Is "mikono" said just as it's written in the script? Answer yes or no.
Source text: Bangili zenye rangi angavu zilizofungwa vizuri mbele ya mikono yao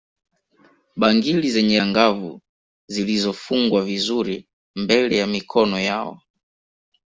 yes